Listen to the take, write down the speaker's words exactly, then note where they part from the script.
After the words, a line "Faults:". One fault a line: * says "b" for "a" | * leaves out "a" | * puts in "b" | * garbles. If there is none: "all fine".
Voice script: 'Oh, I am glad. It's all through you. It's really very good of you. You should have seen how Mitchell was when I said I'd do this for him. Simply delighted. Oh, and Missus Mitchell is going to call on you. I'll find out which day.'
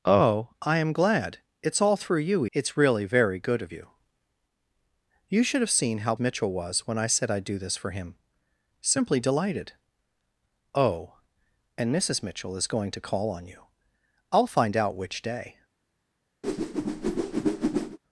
'Oh, I am glad. It's all through you. It's really very good of you. You should have seen how Mitchell was when I said I'd do this for him. Simply delighted. Oh, and Missus Mitchell is going to call on you. I'll find out which day.'
Faults:
all fine